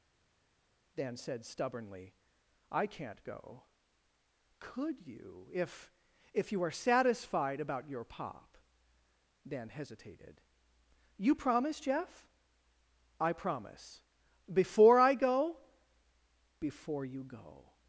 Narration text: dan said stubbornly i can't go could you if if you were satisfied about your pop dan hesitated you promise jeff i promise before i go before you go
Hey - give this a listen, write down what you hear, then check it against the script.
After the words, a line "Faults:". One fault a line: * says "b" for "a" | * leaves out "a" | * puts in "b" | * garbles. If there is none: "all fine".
dan said stubbornly i can't go could you if if you are satisfied about your pop dan hesitated you promise jeff i promise before i go before you go
Faults:
* says "are" for "were"